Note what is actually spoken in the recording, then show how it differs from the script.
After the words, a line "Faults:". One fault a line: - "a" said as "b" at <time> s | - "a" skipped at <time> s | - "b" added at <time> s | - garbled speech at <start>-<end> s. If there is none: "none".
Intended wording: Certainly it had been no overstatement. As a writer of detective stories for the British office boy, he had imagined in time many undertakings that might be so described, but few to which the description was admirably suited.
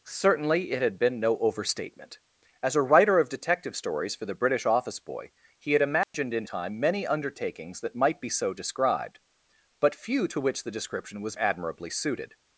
Certainly it had been no overstatement. As a writer of detective stories for the British office boy, he had imagined in time many undertakings that might be so described, but few to which the description was admirably suited.
Faults:
none